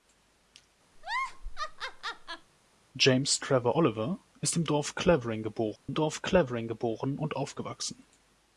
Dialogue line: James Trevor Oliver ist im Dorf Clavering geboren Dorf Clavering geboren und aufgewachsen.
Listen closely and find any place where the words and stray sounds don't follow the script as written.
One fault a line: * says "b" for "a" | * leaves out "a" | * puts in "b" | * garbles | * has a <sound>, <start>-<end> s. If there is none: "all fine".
* has a laugh, 1.0-2.5 s
* has a dropout, 5.8-5.9 s